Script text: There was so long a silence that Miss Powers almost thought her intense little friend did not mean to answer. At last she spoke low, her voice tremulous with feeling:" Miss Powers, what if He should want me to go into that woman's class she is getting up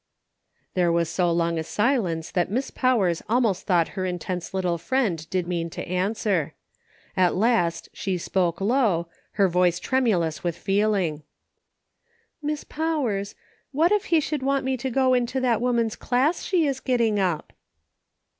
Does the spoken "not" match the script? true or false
false